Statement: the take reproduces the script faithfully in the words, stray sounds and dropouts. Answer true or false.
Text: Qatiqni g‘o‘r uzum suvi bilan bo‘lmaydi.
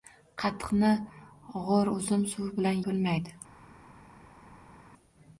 true